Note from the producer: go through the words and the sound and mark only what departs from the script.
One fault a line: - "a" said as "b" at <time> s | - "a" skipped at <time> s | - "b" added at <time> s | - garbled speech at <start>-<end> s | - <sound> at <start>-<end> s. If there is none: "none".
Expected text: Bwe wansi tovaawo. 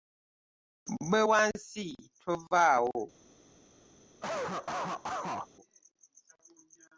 - cough at 4.2-5.5 s